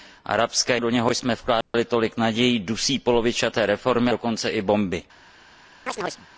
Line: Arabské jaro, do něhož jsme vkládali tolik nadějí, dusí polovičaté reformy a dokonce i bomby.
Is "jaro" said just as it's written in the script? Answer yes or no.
no